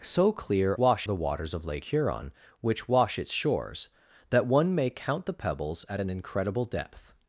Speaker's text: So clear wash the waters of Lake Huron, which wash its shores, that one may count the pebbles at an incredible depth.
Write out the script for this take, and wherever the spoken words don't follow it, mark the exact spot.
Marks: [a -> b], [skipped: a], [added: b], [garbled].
So clear wash the waters of Lake Huron, which wash its shores, that one may count the pebbles at an incredible depth.